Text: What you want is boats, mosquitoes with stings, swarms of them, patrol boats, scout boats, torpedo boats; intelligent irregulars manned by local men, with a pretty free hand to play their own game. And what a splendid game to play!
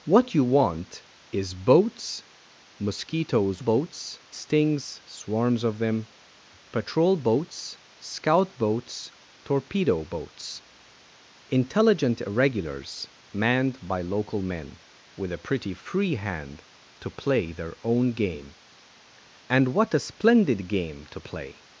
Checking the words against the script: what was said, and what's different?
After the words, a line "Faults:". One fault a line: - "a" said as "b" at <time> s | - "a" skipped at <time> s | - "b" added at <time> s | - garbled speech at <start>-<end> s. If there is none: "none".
What you want is boats, mosquitoes boats stings, swarms of them, patrol boats, scout boats, torpedo boats; intelligent irregulars manned by local men, with a pretty free hand to play their own game. And what a splendid game to play!
Faults:
- "with" said as "boats" at 3.6 s